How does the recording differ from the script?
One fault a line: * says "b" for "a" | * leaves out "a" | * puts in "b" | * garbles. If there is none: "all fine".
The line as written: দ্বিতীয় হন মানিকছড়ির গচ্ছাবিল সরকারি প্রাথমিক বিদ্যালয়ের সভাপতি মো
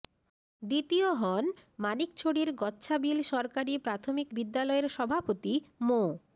all fine